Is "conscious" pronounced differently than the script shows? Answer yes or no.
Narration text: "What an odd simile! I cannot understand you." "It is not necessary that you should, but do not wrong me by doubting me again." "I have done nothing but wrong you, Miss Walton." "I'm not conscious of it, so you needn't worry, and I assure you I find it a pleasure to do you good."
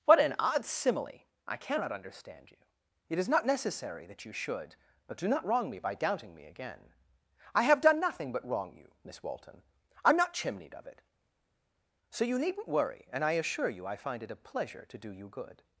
yes